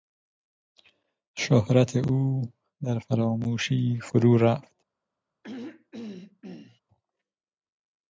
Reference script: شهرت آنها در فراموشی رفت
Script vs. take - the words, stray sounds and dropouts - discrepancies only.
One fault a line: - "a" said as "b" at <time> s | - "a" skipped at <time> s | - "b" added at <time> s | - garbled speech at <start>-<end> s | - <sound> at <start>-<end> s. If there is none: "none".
- "آنها" said as "او" at 1.9 s
- "فرو" added at 4.0 s
- throat clearing at 5.4-6.8 s